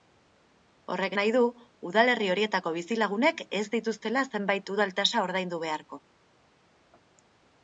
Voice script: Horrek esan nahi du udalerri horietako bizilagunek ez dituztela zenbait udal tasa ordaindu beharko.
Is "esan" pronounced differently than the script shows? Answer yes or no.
yes